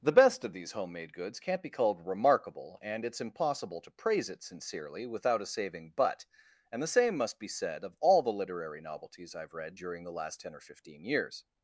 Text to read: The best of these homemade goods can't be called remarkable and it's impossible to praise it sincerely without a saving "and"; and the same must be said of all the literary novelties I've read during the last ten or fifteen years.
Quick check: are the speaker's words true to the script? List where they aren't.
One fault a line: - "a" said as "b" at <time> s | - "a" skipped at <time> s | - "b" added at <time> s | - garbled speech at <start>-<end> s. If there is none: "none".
- "and" said as "but" at 6.0 s